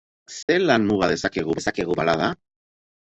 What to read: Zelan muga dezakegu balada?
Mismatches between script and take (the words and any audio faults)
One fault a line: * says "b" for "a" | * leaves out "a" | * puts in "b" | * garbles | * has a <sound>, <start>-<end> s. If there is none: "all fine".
* has a dropout, 0.4-0.5 s
* puts in "dezakegu"